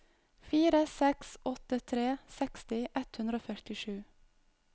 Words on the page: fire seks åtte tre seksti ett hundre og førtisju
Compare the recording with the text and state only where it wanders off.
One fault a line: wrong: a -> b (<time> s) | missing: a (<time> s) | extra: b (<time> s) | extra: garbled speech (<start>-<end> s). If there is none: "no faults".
no faults